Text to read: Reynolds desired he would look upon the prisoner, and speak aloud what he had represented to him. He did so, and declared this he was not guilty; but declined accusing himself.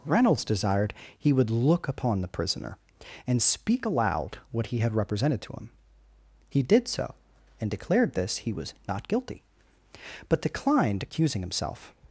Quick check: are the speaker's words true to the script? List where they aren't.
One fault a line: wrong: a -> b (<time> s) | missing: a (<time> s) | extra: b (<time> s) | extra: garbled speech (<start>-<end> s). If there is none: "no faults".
no faults